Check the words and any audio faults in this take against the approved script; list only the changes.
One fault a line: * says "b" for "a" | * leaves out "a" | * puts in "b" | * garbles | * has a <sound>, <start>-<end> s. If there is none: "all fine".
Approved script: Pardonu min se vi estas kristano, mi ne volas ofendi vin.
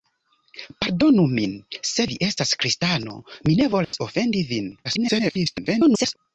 * has a dropout, 3.8-3.9 s
* garbles